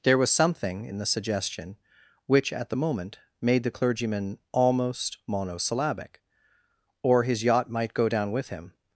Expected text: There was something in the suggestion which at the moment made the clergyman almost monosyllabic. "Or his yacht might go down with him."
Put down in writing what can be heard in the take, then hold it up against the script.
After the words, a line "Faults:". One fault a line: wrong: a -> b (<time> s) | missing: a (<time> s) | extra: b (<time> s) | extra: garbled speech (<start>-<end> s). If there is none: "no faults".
There was something in the suggestion which at the moment made the clergyman almost monosyllabic. "Or his yacht might go down with him."
Faults:
no faults